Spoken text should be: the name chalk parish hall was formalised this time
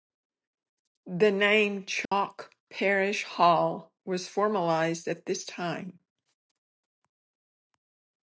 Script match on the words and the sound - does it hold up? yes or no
no